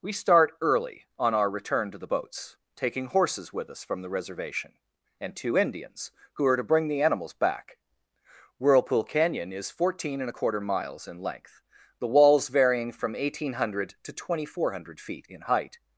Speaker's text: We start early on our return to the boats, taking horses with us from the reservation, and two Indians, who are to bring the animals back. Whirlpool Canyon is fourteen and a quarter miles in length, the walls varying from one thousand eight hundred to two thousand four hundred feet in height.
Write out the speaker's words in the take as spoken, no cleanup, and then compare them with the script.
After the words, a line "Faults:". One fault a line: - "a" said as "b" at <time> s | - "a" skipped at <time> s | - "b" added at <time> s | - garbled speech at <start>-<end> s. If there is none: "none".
We start early on our return to the boats, taking horses with us from the reservation, and two Indians, who are to bring the animals back. Whirlpool Canyon is fourteen and a quarter miles in length, the walls varying from one thousand eight hundred to two thousand four hundred feet in height.
Faults:
none